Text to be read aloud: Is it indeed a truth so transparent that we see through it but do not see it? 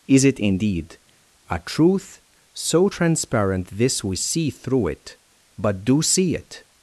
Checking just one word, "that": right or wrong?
wrong